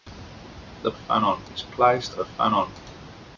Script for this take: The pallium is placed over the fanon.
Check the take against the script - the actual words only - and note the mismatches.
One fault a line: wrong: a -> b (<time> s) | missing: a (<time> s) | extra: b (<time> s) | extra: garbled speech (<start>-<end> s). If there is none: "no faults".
wrong: pallium -> fanon (0.9 s)
missing: over (2.2 s)